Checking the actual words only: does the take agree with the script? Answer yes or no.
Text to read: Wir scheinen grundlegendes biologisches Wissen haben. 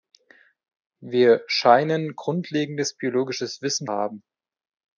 yes